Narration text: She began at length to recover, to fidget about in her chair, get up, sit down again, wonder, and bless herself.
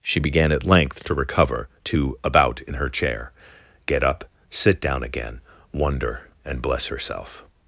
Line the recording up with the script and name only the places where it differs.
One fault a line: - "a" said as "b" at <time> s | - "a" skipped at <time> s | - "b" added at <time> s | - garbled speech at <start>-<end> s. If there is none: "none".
- "fidget" skipped at 2.2 s